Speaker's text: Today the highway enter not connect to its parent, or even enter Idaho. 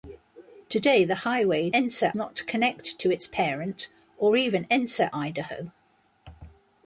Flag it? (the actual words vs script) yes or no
no